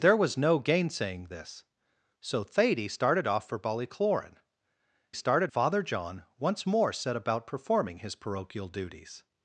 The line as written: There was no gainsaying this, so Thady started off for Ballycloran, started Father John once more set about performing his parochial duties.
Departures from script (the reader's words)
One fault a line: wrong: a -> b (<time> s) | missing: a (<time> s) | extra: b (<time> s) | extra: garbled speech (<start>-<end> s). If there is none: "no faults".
no faults